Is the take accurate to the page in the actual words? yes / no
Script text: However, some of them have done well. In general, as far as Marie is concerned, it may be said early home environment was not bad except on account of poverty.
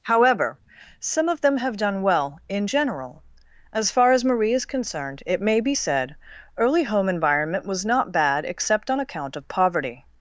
yes